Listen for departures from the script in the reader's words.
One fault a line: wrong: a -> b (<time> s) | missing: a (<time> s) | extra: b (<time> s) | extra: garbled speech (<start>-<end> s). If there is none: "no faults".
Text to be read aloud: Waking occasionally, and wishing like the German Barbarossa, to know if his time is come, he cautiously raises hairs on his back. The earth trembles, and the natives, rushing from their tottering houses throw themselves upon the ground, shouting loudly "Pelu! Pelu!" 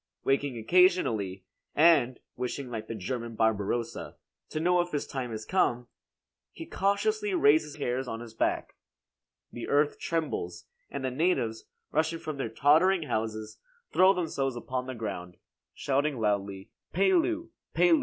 no faults